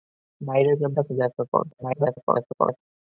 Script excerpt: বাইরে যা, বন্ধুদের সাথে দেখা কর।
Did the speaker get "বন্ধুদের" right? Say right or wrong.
wrong